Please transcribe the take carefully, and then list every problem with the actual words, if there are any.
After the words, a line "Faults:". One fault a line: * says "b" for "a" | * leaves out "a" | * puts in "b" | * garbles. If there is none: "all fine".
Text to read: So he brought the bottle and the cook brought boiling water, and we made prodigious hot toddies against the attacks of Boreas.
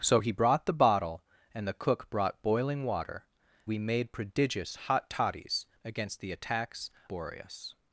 So he brought the bottle and the cook brought boiling water, we made prodigious hot toddies against the attacks Boreas.
Faults:
* leaves out "and"
* leaves out "of"